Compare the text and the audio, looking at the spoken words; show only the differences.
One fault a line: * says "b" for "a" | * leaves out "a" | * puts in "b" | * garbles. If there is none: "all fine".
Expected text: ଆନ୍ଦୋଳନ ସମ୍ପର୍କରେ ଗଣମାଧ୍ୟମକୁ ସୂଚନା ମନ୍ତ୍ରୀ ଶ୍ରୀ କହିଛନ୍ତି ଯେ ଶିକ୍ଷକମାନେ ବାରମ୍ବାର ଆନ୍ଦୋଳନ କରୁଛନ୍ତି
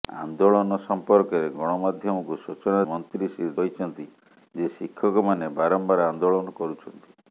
all fine